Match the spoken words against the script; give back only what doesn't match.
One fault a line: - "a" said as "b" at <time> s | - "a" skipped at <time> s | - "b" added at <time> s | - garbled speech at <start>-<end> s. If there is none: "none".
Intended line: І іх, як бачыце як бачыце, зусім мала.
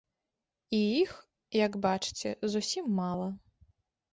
- "як бачыце" skipped at 2.3 s